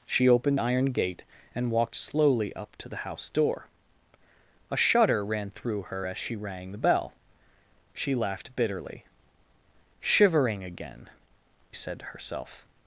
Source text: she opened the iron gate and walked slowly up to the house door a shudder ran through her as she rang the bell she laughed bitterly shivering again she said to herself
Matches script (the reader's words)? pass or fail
fail